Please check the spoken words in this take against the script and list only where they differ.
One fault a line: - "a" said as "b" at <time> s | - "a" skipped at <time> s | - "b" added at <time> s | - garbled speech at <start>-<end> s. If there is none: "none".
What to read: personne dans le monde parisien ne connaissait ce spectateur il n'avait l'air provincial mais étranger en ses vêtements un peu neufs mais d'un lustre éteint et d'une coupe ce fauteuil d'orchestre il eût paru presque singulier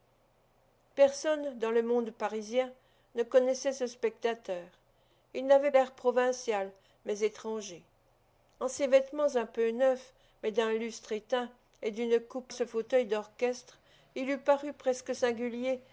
none